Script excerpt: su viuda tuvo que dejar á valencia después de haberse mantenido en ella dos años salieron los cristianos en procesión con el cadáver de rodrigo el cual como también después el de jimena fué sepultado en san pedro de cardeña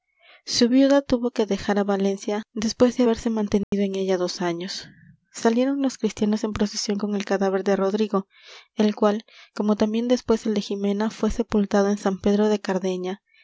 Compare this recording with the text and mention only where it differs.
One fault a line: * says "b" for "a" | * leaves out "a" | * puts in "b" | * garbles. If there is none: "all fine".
all fine